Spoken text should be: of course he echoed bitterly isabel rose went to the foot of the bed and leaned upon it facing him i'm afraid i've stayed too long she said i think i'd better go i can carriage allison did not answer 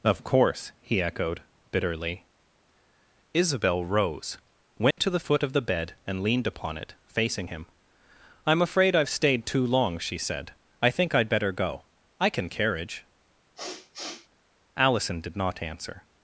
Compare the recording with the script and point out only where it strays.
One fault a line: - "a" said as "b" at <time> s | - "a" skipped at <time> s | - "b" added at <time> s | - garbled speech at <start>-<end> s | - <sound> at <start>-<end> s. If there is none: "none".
- dropout at 4.9-5.0 s
- sniff at 13.6-14.3 s